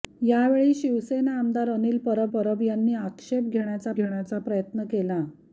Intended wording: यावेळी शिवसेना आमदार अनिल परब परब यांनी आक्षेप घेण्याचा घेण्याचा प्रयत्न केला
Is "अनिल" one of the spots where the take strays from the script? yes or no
no